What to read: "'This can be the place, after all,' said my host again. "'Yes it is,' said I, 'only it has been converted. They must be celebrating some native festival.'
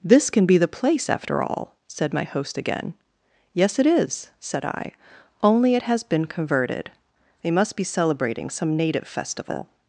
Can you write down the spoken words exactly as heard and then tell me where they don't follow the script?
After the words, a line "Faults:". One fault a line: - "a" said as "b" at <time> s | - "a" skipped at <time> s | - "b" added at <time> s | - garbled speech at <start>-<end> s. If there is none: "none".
"'This can be the place, after all,' said my host again. "'Yes it is,' said I, 'only it has been converted. They must be celebrating some native festival.'
Faults:
none